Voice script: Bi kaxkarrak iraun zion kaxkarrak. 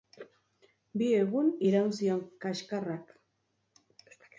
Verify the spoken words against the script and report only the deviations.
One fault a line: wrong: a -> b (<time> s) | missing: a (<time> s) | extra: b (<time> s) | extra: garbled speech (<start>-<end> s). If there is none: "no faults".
wrong: kaxkarrak -> egun (1.2 s)